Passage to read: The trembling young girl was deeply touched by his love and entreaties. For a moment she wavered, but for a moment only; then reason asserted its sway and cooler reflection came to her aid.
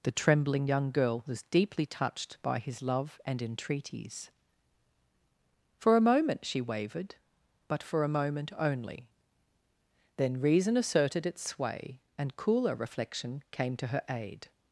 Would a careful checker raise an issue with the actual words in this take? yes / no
no